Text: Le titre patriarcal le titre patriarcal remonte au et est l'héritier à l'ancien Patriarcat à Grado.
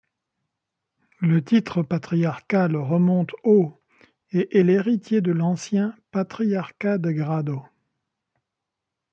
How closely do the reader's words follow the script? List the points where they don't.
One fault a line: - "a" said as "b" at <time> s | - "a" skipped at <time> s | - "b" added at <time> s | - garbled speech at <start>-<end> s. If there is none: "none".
- "le titre patriarcal" skipped at 2.8 s
- "à" said as "de" at 5.2 s
- "à" said as "de" at 7.0 s